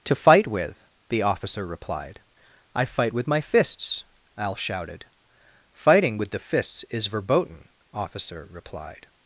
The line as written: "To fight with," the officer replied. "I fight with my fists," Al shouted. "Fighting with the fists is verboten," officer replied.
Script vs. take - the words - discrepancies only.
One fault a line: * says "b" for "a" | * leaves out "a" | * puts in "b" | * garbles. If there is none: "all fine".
all fine